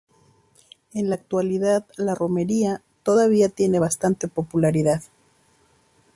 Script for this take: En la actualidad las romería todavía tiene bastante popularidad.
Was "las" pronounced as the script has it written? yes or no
no